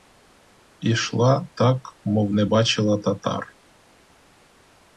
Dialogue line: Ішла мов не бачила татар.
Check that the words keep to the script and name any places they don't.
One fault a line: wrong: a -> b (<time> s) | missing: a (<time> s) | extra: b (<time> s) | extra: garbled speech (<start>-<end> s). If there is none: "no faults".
extra: так (1.5 s)